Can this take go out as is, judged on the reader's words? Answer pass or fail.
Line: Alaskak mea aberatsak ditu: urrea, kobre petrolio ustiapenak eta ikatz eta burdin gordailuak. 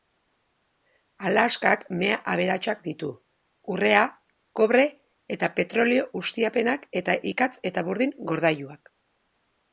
fail